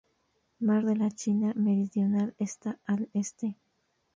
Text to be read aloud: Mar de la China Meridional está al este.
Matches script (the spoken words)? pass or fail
pass